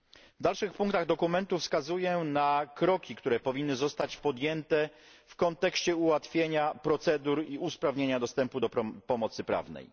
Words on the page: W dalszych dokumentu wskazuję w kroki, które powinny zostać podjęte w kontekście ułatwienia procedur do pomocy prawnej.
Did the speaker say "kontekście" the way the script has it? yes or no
yes